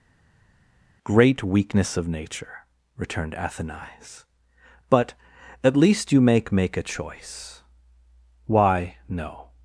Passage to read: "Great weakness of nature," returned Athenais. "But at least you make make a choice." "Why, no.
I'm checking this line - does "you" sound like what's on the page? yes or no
yes